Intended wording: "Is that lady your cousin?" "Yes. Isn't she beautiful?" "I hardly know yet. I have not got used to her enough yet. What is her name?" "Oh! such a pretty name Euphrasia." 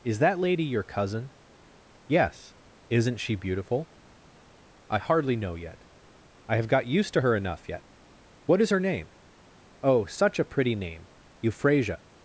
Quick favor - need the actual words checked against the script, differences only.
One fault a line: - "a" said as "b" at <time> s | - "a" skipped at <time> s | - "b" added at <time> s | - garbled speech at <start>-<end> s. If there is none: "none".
- "not" skipped at 6.7 s